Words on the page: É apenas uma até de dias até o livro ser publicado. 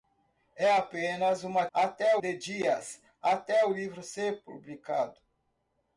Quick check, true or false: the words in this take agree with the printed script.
true